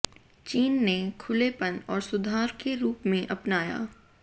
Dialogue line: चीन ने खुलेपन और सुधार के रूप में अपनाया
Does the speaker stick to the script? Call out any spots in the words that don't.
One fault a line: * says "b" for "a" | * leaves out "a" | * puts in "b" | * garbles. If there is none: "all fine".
all fine